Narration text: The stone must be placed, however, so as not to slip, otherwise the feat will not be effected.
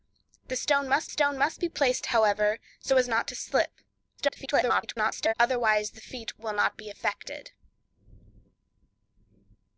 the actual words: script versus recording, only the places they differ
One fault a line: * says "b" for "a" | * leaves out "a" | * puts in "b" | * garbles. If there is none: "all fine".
* puts in "stone must"
* garbles